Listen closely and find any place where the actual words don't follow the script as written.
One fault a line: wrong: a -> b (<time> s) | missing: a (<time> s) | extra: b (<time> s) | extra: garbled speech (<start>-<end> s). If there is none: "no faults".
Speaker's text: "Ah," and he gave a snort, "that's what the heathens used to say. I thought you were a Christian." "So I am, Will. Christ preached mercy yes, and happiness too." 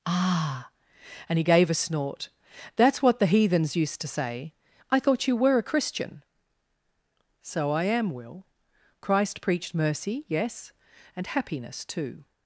no faults